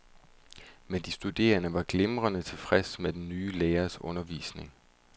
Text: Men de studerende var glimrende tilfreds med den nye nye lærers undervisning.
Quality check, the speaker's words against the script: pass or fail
fail